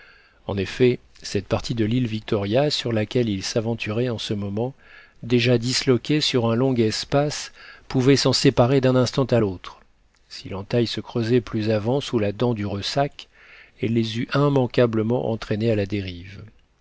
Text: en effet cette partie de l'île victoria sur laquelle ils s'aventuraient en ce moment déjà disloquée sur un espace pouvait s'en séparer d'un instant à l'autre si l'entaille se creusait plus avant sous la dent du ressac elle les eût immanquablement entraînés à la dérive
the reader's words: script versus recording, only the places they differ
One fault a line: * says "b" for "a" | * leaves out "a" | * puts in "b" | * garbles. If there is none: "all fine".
* puts in "long"